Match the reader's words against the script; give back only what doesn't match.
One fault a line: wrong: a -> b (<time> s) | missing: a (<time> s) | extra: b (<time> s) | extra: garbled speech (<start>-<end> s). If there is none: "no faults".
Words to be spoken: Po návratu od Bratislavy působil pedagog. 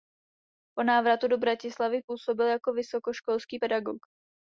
wrong: od -> do (1.3 s)
extra: jako vysokoškolský (2.5 s)